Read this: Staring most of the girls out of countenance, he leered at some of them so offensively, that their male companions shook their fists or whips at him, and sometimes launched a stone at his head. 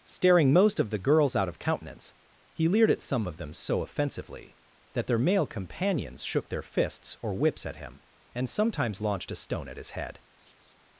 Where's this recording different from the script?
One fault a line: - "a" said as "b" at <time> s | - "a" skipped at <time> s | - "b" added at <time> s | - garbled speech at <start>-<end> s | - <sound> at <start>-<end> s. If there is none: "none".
- laugh at 10.4-10.8 s